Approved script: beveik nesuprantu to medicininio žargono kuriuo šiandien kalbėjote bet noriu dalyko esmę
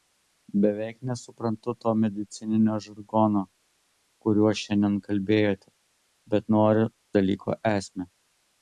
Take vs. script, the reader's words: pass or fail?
pass